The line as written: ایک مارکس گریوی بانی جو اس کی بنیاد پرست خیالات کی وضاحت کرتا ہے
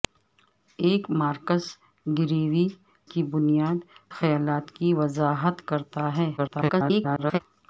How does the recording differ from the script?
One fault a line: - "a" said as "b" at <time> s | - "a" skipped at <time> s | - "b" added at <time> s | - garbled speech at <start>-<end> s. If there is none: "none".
- "بانی جو اس" skipped at 2.7 s
- "پرست" skipped at 3.8 s
- garbled speech at 6.4-7.4 s